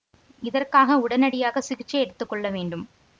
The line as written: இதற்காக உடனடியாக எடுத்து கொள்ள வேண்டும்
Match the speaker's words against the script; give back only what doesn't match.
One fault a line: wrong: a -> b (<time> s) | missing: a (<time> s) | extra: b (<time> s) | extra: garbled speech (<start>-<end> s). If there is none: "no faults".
extra: சிகிச்சை (1.6 s)